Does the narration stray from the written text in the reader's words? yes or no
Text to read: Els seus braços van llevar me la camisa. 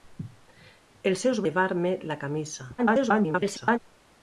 yes